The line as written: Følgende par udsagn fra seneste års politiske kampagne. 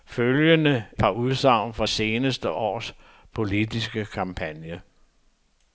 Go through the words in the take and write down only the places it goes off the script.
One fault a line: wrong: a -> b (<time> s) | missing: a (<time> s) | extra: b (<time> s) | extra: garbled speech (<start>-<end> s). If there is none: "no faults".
no faults